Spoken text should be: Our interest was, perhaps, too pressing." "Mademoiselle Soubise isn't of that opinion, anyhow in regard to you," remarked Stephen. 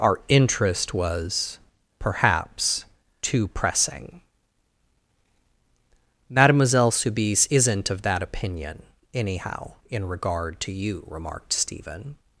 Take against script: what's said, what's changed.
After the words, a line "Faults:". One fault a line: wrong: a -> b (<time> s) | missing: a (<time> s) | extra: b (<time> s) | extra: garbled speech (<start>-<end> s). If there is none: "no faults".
Our interest was, perhaps, too pressing." "Mademoiselle Soubise isn't of that opinion, anyhow in regard to you," remarked Stephen.
Faults:
no faults